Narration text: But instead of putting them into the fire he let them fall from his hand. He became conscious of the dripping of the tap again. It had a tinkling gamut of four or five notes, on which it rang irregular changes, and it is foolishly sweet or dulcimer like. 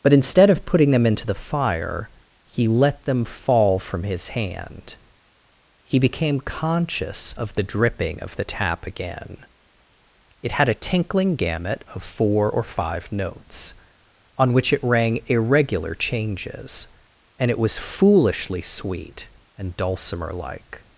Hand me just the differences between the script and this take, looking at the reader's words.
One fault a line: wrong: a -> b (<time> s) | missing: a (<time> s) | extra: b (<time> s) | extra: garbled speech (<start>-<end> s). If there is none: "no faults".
wrong: is -> was (17.6 s)
wrong: or -> and (19.6 s)